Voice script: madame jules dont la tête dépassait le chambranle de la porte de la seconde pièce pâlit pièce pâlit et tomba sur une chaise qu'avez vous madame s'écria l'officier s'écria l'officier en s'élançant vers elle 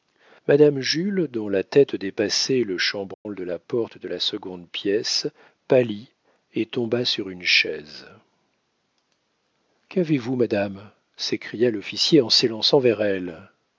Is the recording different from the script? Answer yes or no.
yes